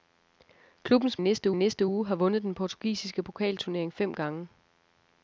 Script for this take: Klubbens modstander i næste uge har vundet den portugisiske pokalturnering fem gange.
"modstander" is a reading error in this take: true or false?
true